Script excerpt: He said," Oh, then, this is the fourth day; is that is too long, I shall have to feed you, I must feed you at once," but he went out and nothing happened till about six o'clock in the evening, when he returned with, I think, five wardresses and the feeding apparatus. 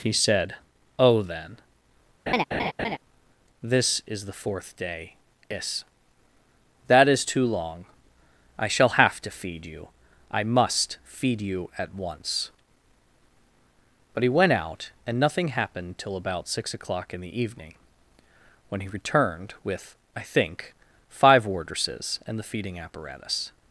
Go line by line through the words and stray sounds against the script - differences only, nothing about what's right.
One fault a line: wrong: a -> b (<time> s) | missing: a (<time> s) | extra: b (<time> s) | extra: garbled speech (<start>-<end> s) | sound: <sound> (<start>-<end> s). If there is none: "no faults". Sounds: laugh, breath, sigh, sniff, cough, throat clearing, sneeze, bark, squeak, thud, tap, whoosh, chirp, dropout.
sound: laugh (2.3-3.0 s)